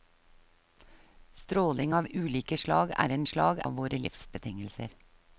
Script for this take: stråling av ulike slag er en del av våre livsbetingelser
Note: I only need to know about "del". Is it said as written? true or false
false